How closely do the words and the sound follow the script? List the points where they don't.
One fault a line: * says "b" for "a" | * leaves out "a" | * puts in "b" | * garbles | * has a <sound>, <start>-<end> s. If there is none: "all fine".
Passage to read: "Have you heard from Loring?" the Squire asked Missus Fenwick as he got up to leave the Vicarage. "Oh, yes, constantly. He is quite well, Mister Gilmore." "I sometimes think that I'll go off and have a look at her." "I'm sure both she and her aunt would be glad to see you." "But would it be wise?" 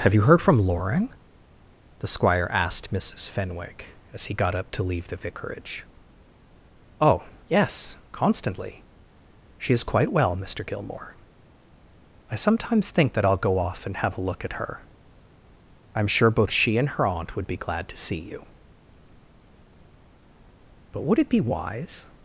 * says "She" for "He"